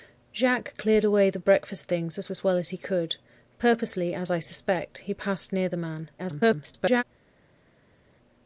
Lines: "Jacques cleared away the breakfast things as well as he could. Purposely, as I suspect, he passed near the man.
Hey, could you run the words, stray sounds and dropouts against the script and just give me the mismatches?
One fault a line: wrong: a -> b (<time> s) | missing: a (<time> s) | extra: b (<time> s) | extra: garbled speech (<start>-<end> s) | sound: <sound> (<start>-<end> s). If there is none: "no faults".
extra: as (2.3 s)
extra: garbled speech (6.2-7.0 s)